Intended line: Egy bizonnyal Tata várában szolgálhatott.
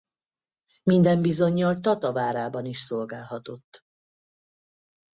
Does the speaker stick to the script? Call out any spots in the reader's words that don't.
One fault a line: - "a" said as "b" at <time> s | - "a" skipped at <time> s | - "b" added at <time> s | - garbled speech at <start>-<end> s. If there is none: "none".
- "Egy" said as "Minden" at 0.8 s
- "is" added at 2.6 s